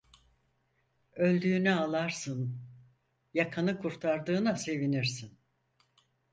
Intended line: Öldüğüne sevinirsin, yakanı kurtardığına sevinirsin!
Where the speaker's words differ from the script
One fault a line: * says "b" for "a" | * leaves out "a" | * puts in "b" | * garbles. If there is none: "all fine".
* says "ağlarsın" for "sevinirsin"